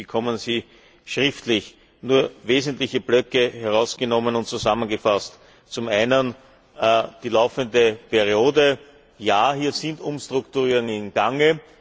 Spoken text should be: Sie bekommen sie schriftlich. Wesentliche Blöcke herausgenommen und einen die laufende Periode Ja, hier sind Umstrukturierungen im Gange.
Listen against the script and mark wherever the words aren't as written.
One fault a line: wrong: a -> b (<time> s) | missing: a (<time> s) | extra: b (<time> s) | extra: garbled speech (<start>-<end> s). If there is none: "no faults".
extra: Nur (2.0 s)
extra: zusammengefasst Zum (4.5 s)